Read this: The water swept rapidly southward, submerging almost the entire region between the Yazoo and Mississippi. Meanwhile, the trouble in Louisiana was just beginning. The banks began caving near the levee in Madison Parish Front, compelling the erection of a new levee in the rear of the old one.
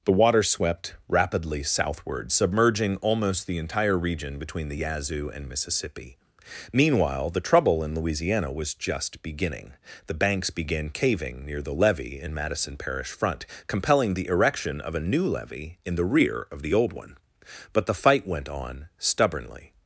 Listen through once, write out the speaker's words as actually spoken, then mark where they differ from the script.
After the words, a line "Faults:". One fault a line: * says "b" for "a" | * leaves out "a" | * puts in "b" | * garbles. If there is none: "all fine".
The water swept rapidly southward, submerging almost the entire region between the Yazoo and Mississippi. Meanwhile, the trouble in Louisiana was just beginning. The banks began caving near the levee in Madison Parish Front, compelling the erection of a new levee in the rear of the old one. But the fight went on stubbornly
Faults:
* puts in "But the fight went on stubbornly"